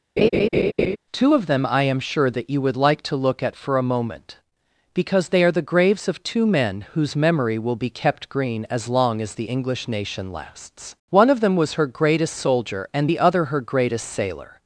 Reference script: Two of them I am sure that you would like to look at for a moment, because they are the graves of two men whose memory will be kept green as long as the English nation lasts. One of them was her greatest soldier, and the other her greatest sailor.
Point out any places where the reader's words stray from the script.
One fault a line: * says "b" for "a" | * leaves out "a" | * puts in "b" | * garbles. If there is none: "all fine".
all fine